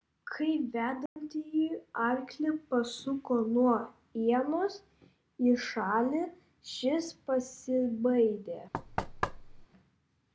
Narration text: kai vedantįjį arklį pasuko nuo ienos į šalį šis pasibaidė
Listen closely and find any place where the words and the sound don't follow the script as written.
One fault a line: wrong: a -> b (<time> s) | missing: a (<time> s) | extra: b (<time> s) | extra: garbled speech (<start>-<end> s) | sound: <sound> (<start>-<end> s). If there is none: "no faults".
sound: dropout (1.1-1.2 s)
sound: thud (8.7-9.7 s)